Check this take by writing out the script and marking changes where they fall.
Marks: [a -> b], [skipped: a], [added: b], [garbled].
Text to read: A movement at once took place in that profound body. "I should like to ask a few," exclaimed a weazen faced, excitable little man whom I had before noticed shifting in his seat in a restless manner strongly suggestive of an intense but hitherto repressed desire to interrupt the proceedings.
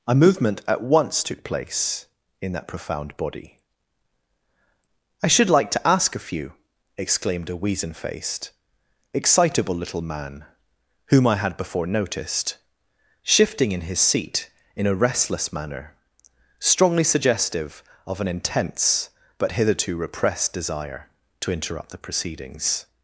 A movement at once took place in that profound body. "I should like to ask a few," exclaimed a weazen faced, excitable little man whom I had before noticed shifting in his seat in a restless manner strongly suggestive of an intense but hitherto repressed desire to interrupt the proceedings.